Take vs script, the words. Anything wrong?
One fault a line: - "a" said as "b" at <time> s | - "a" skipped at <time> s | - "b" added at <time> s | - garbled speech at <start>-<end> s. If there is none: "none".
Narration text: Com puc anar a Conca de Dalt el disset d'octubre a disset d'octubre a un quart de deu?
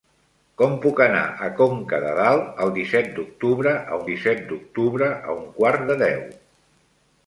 none